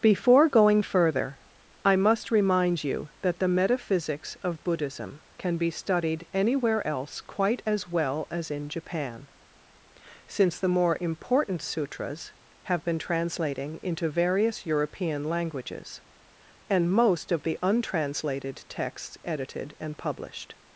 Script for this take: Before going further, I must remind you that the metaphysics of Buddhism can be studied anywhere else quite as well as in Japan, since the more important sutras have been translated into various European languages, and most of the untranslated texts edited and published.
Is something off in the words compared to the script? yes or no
yes